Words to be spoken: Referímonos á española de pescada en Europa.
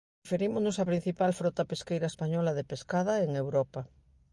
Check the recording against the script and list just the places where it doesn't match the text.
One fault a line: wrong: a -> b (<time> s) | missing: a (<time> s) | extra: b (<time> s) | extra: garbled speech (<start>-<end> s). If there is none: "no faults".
extra: principal frota pesqueira (0.9 s)